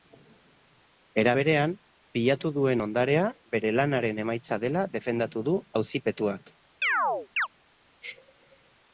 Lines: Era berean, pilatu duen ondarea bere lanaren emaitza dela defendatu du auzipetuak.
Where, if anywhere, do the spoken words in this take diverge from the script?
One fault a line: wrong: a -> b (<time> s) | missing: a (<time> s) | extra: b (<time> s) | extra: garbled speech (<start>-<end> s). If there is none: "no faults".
no faults